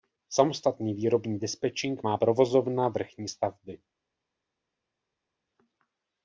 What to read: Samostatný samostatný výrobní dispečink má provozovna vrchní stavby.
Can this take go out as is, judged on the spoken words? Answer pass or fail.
fail